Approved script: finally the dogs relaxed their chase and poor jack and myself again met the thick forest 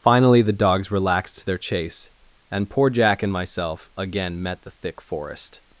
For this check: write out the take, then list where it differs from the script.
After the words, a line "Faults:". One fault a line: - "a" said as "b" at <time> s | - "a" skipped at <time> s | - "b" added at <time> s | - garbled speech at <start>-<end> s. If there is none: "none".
finally the dogs relaxed their chase and poor jack and myself again met the thick forest
Faults:
none